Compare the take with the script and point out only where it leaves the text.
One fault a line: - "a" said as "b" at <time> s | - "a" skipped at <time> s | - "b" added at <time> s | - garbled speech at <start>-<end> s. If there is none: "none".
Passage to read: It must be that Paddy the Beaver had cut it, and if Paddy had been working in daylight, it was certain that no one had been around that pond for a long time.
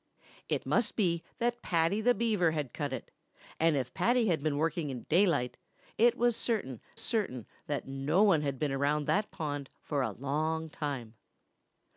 - "certain" added at 7.0 s